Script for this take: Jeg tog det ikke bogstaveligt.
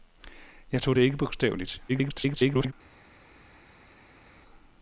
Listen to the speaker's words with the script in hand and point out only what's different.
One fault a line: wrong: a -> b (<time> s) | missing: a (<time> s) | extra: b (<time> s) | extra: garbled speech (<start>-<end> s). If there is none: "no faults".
extra: garbled speech (1.9-2.7 s)